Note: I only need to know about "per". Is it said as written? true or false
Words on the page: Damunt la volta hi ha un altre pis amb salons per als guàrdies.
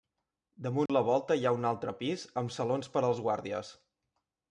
true